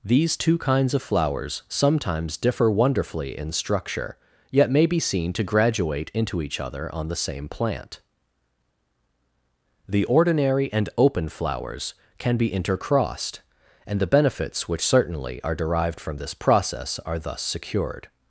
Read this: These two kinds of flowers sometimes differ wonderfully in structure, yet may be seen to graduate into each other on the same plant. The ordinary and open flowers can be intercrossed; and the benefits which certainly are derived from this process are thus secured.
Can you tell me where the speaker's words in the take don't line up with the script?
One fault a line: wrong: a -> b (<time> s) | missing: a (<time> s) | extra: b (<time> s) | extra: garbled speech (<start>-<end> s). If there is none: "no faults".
no faults